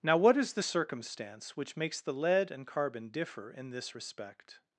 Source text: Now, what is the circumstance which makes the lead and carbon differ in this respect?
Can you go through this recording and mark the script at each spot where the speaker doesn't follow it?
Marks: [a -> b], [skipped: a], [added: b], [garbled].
Now, what is the circumstance which makes the lead and carbon differ in this respect?